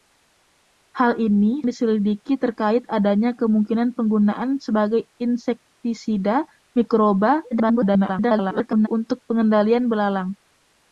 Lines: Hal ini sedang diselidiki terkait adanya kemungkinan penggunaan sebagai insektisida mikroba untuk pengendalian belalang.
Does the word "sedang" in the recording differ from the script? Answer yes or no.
yes